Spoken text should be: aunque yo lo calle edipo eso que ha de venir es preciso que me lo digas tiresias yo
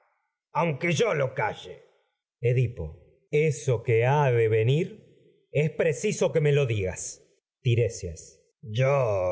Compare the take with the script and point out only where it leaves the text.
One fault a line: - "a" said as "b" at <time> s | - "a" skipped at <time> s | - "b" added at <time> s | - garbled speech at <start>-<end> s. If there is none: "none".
none